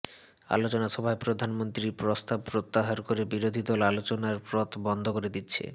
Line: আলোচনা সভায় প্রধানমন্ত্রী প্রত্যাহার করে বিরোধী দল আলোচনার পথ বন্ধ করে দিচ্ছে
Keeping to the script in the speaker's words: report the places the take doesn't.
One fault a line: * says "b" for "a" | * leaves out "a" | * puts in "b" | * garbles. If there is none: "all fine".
* puts in "প্রস্তাব"